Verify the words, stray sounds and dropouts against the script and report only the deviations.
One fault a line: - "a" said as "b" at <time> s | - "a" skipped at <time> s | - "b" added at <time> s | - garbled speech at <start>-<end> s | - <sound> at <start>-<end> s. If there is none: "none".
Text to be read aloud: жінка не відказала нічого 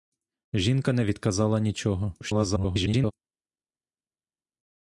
- garbled speech at 2.2-3.1 s